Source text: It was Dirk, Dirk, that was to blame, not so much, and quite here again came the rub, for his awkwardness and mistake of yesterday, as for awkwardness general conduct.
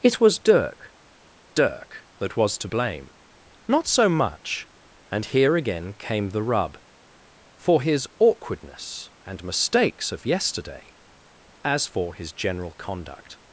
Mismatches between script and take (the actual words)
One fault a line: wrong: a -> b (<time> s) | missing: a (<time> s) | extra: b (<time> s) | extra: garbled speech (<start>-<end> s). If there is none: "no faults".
missing: quite (5.2 s)
wrong: mistake -> mistakes (9.4 s)
wrong: awkwardness -> his (12.1 s)